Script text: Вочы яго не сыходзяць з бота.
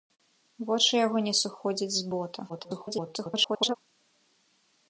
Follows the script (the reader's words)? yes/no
no